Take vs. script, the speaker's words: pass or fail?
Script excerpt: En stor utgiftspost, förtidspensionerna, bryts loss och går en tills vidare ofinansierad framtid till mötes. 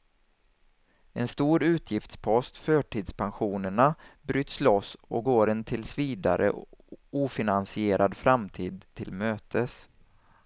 pass